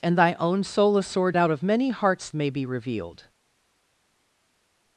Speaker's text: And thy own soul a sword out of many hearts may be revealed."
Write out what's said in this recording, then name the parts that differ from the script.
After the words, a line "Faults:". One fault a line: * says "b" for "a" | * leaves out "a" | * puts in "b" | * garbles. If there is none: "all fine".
And thy own soul a sword out of many hearts may be revealed."
Faults:
all fine